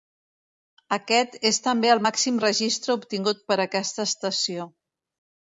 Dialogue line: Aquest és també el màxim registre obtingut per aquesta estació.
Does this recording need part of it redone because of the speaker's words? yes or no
no